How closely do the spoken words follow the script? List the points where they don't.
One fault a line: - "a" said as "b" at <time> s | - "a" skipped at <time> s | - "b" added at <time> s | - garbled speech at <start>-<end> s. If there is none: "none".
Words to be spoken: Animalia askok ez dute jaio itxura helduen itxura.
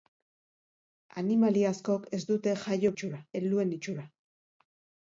none